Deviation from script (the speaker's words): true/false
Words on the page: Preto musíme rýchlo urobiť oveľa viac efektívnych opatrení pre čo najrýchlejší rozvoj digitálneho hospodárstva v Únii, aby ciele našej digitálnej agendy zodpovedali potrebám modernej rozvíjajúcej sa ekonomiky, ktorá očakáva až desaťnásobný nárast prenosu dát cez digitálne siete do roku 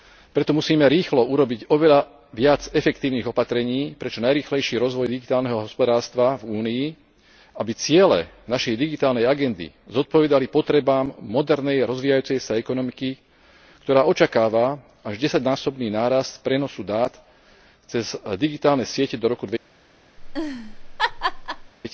false